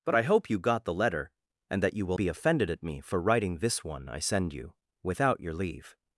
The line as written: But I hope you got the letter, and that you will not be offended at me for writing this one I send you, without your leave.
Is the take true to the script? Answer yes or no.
no